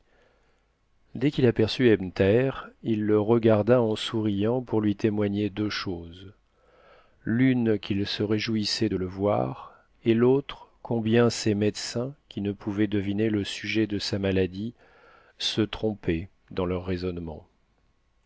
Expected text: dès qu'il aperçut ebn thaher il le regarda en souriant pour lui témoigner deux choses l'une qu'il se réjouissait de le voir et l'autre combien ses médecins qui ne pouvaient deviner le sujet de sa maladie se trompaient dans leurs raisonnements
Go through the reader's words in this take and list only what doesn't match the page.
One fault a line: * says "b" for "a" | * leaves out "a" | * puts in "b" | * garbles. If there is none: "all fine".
all fine